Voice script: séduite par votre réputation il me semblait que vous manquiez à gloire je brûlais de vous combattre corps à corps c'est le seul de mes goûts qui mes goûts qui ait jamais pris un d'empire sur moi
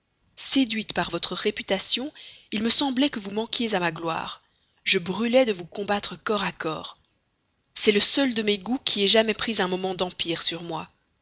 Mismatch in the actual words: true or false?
true